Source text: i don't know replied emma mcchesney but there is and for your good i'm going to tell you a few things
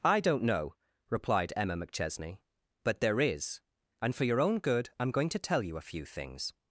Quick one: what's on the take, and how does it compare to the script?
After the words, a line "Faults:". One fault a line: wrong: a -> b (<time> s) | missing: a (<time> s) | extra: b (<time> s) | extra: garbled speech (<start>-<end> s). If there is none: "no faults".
i don't know replied emma mcchesney but there is and for your own good i'm going to tell you a few things
Faults:
extra: own (4.4 s)